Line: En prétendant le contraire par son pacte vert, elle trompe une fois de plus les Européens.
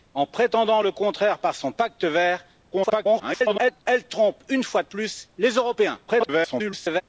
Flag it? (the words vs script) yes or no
yes